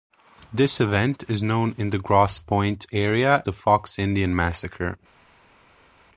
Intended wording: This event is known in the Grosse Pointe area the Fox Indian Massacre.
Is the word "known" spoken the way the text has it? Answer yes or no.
yes